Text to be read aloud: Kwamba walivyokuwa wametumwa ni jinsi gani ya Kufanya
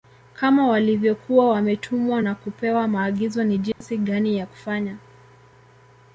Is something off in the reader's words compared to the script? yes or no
yes